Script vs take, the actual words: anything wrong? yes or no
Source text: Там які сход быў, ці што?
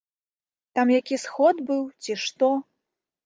no